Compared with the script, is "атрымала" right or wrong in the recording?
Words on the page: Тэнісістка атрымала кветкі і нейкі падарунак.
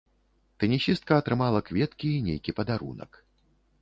right